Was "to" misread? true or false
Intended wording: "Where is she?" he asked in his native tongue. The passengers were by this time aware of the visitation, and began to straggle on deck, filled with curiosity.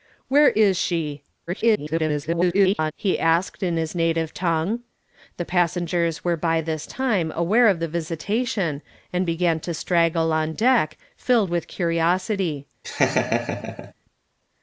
false